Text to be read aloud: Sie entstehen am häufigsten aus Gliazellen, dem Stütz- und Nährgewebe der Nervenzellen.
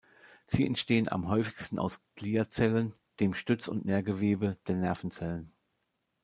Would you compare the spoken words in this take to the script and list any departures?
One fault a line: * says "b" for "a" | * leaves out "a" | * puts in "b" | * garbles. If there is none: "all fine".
all fine